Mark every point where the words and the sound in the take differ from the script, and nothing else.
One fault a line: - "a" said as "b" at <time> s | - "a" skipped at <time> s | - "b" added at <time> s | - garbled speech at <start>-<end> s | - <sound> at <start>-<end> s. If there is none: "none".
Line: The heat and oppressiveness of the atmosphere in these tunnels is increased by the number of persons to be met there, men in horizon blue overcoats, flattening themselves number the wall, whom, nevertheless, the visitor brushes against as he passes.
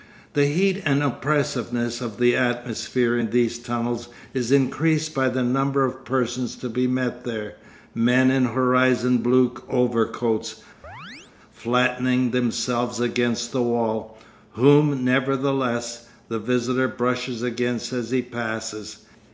- chirp at 10.8-11.3 s
- "number" said as "against" at 13.0 s